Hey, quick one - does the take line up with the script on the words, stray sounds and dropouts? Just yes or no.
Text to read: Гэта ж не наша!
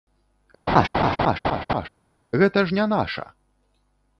no